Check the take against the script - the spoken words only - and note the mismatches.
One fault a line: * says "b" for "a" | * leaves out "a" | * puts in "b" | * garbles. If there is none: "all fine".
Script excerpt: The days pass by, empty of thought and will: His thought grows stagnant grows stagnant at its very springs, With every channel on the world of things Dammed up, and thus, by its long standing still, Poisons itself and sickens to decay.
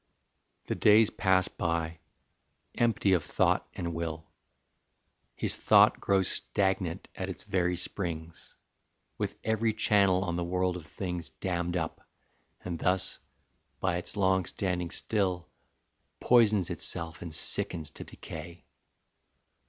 * leaves out "grows stagnant"